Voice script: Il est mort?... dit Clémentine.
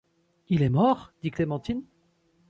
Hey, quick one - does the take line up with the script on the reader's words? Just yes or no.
yes